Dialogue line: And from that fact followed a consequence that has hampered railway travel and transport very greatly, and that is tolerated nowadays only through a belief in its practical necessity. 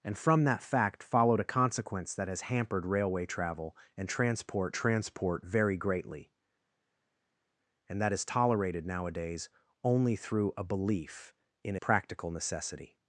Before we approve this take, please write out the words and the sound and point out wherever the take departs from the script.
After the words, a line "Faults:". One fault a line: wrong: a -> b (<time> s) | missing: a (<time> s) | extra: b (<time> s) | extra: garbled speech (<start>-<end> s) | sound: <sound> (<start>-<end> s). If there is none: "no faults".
And from that fact followed a consequence that has hampered railway travel and transport transport very greatly, and that is tolerated nowadays only through a belief in practical necessity.
Faults:
extra: transport (4.7 s)
missing: its (11.8 s)